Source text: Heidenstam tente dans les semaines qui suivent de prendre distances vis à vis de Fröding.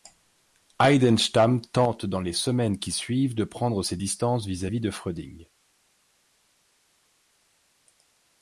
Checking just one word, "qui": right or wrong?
right